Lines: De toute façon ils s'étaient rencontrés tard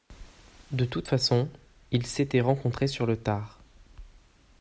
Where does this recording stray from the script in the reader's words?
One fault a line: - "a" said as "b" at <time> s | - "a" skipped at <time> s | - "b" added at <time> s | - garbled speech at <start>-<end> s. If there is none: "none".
- "sur le" added at 2.9 s